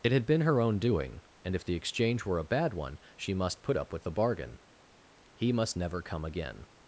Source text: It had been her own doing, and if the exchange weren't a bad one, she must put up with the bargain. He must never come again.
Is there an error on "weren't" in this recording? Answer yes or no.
yes